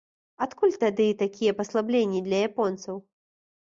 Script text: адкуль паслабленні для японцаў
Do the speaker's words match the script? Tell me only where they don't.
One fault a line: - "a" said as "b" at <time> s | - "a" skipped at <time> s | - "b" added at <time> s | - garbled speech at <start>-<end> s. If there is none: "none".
- "тады такія" added at 0.8 s